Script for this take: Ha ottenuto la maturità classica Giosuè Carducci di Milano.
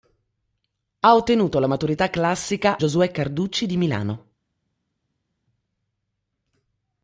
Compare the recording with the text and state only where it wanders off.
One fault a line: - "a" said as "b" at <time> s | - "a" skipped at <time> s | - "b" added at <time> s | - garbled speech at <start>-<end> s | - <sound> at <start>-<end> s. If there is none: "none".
none